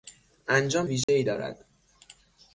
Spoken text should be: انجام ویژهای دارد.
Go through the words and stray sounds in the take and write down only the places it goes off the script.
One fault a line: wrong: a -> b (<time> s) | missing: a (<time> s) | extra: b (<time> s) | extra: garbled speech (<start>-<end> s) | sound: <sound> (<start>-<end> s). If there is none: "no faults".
sound: dropout (1.0-1.1 s)